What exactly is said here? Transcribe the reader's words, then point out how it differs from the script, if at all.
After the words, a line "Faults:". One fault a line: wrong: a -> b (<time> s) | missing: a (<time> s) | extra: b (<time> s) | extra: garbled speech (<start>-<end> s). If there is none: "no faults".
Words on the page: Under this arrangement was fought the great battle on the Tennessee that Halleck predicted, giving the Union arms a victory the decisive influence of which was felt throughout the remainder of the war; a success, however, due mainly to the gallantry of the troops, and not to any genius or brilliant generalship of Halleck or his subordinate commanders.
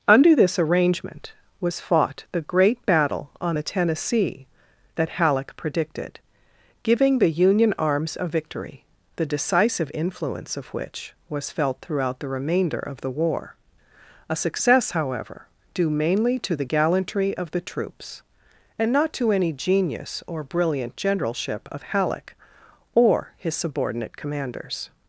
Under this arrangement was fought the great battle on the Tennessee that Halleck predicted, giving the Union arms a victory the decisive influence of which was felt throughout the remainder of the war; a success, however, due mainly to the gallantry of the troops, and not to any genius or brilliant generalship of Halleck or his subordinate commanders.
Faults:
no faults